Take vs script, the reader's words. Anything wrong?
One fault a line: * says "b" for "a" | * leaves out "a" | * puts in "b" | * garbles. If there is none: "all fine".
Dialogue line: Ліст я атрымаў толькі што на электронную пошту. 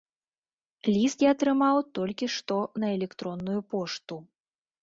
all fine